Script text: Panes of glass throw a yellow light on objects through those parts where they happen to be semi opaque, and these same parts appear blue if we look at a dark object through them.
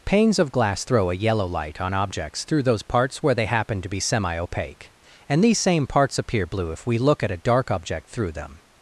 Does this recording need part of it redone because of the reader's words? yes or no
no